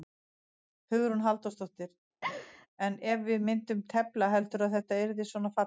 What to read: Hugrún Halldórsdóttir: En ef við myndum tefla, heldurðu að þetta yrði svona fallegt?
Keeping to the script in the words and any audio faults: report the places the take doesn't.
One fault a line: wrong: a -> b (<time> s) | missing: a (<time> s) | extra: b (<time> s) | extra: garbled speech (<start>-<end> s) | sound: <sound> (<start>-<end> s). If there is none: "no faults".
sound: laugh (2.2-2.7 s)